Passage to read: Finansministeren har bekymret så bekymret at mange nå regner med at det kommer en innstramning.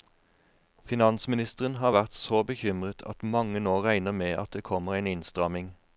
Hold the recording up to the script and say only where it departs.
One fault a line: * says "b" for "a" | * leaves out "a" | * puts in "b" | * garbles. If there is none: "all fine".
* says "vært" for "bekymret"